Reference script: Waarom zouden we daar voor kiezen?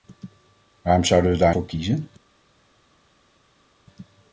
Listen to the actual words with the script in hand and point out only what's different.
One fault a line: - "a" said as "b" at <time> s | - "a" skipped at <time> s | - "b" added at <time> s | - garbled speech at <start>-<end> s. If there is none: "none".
none